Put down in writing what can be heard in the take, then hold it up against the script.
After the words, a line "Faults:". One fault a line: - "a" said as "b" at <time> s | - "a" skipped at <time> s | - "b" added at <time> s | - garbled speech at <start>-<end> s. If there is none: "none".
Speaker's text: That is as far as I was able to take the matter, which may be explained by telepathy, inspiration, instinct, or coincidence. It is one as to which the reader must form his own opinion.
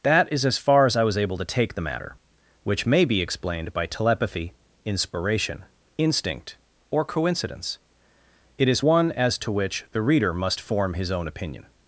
That is as far as I was able to take the matter, which may be explained by telepathy, inspiration, instinct, or coincidence. It is one as to which the reader must form his own opinion.
Faults:
none